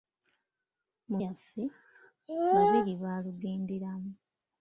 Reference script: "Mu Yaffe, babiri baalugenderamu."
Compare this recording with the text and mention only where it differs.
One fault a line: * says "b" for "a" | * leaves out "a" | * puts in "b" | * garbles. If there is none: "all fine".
all fine